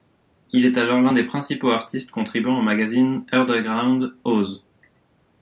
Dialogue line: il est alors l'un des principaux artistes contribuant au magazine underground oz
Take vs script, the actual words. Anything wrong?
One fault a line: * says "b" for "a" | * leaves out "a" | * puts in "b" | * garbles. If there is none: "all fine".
all fine